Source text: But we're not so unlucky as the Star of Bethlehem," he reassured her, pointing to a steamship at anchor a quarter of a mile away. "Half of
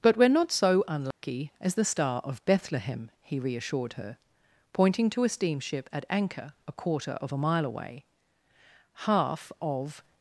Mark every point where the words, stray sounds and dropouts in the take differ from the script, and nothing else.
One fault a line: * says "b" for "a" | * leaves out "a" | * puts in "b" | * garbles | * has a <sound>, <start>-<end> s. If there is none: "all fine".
* has a dropout, 1.1-1.2 s